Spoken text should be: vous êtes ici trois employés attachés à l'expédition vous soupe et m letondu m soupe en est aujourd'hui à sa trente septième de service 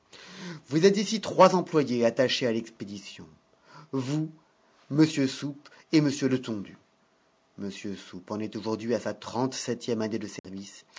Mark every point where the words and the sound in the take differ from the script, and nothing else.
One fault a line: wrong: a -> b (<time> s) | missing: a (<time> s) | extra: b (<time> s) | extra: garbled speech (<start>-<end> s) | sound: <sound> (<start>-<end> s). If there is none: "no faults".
extra: m (4.9 s)
extra: année (10.0 s)
sound: dropout (10.4-10.4 s)